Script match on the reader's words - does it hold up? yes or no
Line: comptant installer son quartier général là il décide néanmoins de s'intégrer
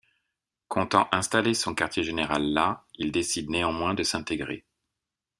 yes